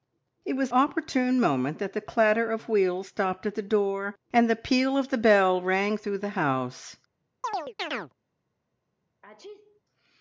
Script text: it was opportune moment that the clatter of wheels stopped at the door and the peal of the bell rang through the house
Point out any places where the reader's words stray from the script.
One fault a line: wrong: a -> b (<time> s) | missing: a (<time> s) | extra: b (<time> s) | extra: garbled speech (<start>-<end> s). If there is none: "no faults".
no faults